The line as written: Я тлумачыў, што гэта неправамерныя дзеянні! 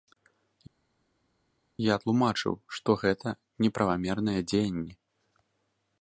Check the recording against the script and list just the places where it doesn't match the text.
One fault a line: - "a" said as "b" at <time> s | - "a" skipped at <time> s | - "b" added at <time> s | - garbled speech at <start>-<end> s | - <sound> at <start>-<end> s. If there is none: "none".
none